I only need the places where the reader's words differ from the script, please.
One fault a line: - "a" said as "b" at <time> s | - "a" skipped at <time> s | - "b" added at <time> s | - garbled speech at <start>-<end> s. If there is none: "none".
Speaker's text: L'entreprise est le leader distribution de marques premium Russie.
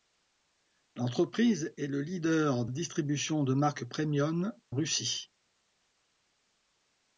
none